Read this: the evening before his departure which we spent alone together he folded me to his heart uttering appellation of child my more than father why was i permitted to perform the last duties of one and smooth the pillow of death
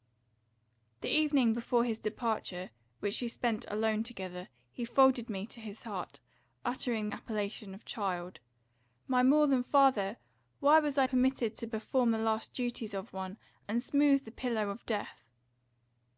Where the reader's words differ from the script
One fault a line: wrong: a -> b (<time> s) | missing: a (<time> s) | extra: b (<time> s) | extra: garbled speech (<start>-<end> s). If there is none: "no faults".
no faults